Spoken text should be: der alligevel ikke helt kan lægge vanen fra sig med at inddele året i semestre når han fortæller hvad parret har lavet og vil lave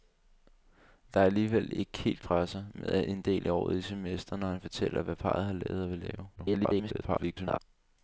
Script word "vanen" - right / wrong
wrong